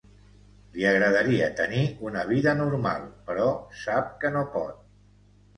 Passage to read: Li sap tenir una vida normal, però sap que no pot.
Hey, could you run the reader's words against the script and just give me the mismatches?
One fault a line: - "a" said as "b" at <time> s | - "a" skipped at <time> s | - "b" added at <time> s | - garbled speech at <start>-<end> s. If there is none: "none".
- "sap" said as "agradaria" at 0.9 s